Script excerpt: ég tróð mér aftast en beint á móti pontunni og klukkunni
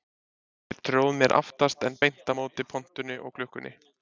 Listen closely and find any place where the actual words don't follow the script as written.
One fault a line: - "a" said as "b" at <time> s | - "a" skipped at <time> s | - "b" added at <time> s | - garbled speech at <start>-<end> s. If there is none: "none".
none